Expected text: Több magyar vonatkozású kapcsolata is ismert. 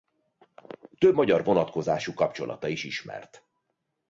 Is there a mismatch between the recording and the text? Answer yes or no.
no